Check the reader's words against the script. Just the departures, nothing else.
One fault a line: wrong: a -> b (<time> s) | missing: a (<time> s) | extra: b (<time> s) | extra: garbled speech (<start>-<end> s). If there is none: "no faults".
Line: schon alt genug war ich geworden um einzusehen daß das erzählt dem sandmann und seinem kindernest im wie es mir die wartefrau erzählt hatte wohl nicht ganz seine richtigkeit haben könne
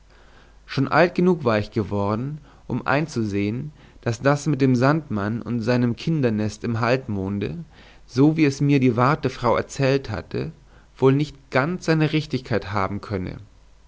wrong: erzählt -> mit (4.5 s)
extra: halbmonde so (6.8 s)